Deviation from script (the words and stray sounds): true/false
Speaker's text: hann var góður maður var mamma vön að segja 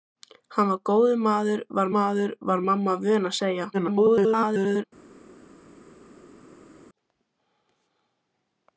true